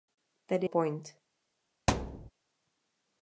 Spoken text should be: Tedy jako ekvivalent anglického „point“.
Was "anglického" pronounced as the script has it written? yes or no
no